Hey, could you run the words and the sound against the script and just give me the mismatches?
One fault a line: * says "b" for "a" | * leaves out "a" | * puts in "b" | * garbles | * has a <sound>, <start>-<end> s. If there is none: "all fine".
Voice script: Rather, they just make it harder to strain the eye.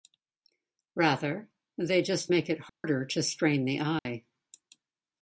* has a dropout, 2.7-2.8 s
* has a dropout, 4.0-4.1 s